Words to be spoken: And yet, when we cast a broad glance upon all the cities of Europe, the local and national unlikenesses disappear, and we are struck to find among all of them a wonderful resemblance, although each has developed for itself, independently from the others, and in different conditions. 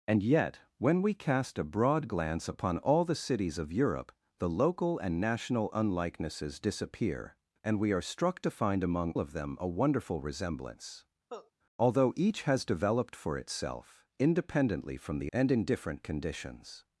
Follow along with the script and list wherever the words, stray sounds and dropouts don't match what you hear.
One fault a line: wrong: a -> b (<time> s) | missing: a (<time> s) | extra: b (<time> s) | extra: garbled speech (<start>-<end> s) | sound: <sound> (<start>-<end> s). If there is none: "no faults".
missing: all (9.1 s)
sound: cough (11.3-11.5 s)
missing: others (15.3 s)